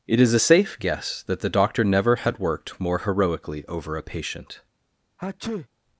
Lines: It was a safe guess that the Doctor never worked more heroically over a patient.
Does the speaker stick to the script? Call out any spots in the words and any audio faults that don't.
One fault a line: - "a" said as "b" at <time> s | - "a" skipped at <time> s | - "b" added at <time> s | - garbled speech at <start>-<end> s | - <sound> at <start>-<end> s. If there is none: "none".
- "was" said as "is" at 0.2 s
- "had" added at 2.2 s
- sneeze at 5.2-5.7 s